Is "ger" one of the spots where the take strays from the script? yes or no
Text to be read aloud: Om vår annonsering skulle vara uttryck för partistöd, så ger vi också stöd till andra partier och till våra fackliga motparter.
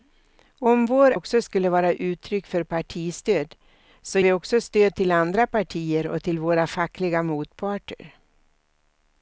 yes